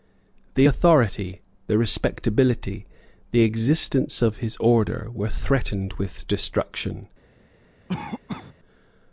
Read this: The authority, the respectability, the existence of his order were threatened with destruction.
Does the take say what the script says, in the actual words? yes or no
yes